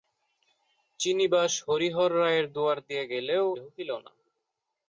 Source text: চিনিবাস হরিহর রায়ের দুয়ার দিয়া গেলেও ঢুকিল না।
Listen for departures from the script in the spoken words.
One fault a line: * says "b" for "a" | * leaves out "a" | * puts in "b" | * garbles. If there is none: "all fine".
all fine